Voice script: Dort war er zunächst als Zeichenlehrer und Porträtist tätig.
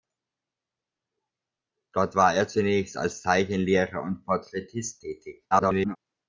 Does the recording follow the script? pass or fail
fail